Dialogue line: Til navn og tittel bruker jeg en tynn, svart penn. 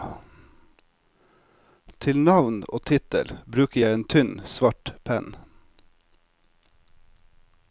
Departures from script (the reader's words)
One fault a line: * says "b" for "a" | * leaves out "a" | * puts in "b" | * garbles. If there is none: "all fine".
all fine